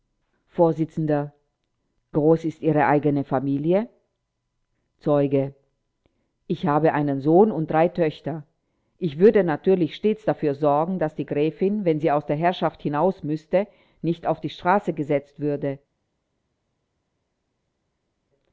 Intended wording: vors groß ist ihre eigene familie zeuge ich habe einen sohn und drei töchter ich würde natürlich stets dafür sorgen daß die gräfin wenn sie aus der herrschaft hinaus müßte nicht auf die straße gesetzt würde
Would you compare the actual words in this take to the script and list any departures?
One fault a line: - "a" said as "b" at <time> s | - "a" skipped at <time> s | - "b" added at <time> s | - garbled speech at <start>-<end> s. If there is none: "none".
none